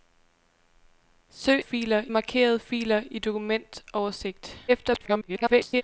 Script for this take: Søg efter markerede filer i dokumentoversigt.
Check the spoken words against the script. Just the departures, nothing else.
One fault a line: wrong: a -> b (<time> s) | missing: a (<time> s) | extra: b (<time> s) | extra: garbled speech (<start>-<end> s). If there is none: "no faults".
wrong: efter -> filer (1.6 s)
extra: garbled speech (4.7-5.8 s)